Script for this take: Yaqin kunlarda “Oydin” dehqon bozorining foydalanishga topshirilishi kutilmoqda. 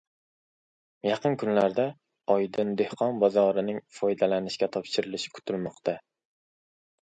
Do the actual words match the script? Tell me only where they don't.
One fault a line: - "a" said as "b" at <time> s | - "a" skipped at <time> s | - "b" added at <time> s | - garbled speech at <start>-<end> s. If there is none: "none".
none